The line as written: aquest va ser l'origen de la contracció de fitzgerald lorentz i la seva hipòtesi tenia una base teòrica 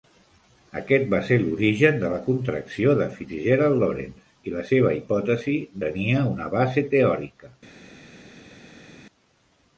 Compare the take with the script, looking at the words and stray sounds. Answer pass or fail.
pass